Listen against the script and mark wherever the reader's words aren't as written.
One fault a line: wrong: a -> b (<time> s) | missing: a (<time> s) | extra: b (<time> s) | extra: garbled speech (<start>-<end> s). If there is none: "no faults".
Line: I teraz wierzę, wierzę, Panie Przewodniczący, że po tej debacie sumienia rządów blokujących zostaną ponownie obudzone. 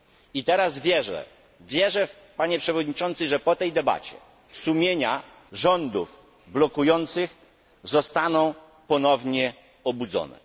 no faults